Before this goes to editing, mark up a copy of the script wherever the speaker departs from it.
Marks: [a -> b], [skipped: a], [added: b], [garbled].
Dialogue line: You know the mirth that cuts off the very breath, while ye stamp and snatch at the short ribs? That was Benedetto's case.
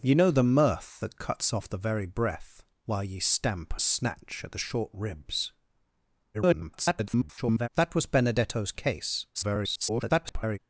You know the mirth that cuts off the very breath, while ye stamp [skipped: and] snatch at the short ribs? [garbled] That was Benedetto's case. [garbled]